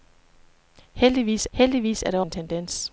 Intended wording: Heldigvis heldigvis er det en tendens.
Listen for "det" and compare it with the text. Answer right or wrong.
right